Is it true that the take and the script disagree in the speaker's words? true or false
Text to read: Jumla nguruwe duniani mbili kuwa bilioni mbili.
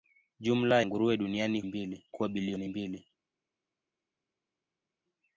false